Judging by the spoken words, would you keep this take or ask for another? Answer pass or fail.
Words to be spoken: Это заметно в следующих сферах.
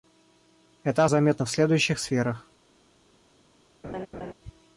pass